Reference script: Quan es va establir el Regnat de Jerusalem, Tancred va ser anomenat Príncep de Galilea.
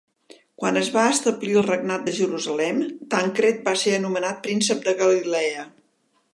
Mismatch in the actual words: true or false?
false